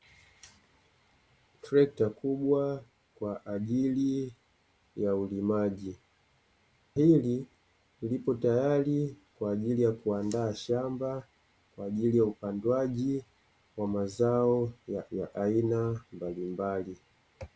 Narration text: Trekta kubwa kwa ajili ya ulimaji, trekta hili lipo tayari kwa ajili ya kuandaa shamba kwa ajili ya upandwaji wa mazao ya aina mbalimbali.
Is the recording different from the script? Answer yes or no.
yes